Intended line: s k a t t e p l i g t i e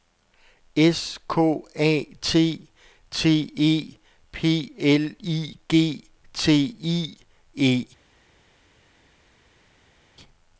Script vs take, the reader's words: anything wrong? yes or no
no